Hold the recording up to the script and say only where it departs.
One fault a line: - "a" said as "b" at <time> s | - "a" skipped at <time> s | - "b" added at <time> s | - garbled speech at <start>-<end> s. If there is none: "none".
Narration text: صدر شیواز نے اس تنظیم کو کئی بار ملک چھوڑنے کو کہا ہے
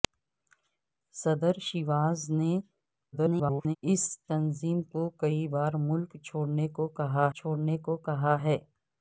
- garbled speech at 3.1-3.8 s
- "چھوڑنے کو کہا" added at 7.4 s